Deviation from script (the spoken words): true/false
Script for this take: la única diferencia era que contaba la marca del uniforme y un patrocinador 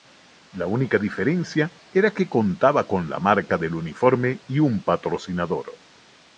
true